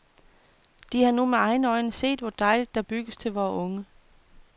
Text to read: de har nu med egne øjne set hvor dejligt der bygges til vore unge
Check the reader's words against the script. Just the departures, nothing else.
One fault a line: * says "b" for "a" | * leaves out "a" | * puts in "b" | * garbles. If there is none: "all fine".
all fine